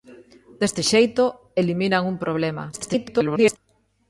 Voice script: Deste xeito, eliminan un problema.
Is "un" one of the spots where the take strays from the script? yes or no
no